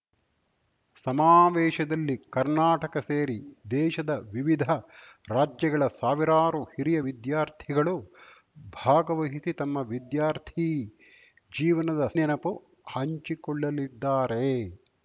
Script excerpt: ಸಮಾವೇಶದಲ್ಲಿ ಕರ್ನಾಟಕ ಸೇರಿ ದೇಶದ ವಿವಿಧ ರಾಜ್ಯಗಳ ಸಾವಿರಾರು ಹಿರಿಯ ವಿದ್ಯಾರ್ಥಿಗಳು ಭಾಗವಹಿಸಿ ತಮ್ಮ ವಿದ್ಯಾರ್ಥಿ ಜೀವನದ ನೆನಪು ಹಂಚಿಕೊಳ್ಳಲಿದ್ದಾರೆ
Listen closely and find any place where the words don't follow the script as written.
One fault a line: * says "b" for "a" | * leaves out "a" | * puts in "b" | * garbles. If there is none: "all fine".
all fine